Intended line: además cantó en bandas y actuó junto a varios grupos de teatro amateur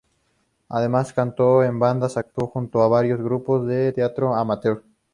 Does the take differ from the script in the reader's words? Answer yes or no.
no